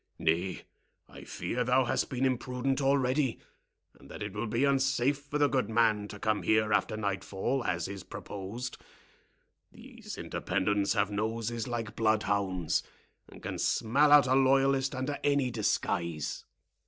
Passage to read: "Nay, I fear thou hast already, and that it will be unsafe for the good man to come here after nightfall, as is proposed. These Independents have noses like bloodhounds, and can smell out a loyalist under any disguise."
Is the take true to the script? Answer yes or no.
no